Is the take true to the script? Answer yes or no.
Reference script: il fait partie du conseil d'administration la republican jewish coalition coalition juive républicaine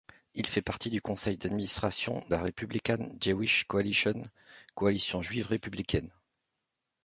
yes